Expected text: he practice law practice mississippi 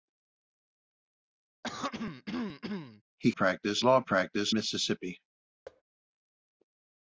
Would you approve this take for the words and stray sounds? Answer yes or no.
no